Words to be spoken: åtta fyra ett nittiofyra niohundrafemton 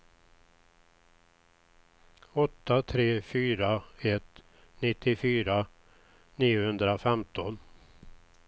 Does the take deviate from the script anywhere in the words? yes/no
yes